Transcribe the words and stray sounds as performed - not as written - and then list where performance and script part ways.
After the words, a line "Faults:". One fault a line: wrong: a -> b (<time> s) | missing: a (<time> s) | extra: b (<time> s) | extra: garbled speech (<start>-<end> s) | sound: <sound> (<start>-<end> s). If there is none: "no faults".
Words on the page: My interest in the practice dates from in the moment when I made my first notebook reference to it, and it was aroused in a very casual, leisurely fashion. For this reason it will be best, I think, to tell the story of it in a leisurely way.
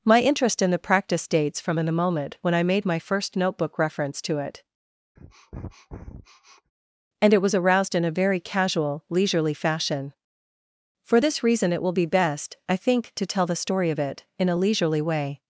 My interest in the practice dates from in the moment when I made my first notebook reference to it, and it was aroused in a very casual, leisurely fashion. For this reason it will be best, I think, to tell the story of it in a leisurely way.
Faults:
sound: sniff (5.2-6.7 s)